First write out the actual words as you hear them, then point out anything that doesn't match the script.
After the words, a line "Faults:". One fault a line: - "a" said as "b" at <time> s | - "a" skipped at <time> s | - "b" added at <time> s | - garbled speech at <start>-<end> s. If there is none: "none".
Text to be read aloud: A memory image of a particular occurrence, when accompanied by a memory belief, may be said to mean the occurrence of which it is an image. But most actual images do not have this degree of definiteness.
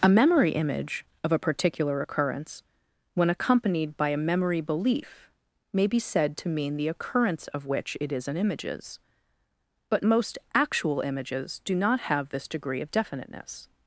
A memory image of a particular occurrence, when accompanied by a memory belief, may be said to mean the occurrence of which it is an images. But most actual images do not have this degree of definiteness.
Faults:
- "image" said as "images" at 8.4 s